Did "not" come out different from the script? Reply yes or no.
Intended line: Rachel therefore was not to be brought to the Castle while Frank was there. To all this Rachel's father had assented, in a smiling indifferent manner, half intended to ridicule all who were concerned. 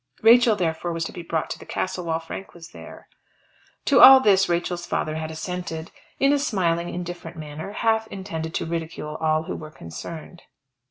yes